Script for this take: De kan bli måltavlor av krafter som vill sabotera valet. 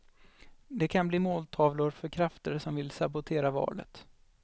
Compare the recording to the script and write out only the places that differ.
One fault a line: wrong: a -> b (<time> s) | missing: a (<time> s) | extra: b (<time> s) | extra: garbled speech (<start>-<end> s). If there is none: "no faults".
wrong: av -> för (1.9 s)